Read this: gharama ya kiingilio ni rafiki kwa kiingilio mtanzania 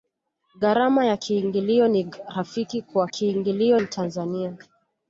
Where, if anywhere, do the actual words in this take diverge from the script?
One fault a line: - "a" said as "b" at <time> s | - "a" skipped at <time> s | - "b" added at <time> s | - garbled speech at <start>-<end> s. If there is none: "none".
none